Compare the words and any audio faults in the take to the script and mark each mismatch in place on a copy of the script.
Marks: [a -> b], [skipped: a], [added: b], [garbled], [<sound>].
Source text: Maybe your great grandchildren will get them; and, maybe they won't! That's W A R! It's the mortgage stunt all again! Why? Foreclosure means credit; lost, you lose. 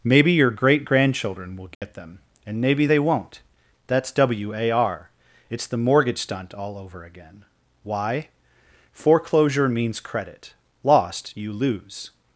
Maybe your great grandchildren will get [dropout] them; and, maybe they won't! That's W A R! It's the mortgage stunt all [added: over] again! Why? Foreclosure means credit; lost, you lose.